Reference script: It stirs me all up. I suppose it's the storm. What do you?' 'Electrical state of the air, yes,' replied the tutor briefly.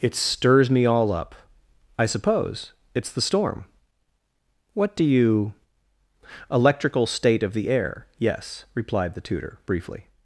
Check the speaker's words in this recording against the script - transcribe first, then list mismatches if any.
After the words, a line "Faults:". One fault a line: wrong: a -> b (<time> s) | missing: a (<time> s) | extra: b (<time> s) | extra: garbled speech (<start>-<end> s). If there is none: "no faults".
It stirs me all up. I suppose it's the storm. What do you?' 'Electrical state of the air, yes,' replied the tutor briefly.
Faults:
no faults